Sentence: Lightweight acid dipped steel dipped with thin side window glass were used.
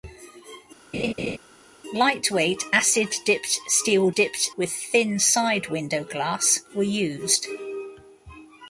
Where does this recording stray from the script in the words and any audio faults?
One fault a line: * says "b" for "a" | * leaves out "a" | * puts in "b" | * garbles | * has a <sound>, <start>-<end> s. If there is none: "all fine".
* has a laugh, 0.9-1.4 s